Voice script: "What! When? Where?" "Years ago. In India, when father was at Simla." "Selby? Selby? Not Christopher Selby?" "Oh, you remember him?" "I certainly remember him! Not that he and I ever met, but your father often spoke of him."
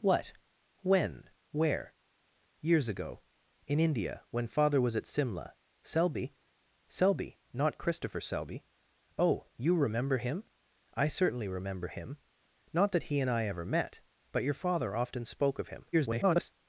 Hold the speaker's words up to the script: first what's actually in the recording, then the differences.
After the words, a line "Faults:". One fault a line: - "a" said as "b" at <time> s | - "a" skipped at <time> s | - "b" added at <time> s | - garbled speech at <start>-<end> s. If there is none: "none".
"What! When? Where?" "Years ago. In India, when father was at Simla." "Selby? Selby? Not Christopher Selby?" "Oh, you remember him?" "I certainly remember him! Not that he and I ever met, but your father often spoke of him." [garbled]
Faults:
- garbled speech at 15.9-16.5 s